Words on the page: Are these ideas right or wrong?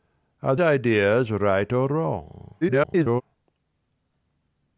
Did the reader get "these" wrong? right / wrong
wrong